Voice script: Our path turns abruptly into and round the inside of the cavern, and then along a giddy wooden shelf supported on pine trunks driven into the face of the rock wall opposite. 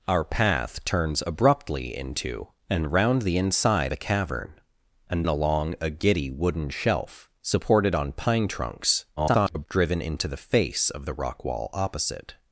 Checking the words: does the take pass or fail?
fail